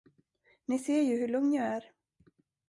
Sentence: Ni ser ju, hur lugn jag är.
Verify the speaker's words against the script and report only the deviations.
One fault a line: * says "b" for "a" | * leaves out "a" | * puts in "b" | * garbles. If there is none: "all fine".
all fine